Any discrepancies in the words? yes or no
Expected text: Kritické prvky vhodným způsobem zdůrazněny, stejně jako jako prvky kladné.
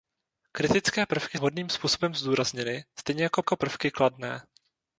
no